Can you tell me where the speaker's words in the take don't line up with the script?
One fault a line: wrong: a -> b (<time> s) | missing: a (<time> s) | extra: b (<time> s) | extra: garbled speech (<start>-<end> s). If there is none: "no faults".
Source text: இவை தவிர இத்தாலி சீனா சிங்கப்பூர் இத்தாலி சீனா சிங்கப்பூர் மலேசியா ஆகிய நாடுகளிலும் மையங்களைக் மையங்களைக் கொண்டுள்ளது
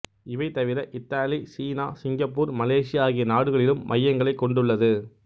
missing: இத்தாலி சீனா சிங்கப்பூர் (2.5 s)
missing: மையங்களைக் (4.4 s)